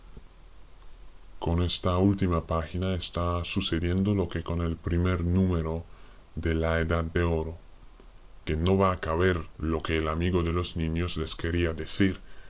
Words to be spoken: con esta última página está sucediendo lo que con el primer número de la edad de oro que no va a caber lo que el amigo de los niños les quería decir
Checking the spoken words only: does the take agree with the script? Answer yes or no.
yes